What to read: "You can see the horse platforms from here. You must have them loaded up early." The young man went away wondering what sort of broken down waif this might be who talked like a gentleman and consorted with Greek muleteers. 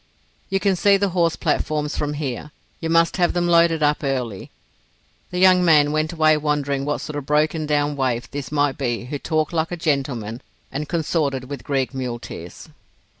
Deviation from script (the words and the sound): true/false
false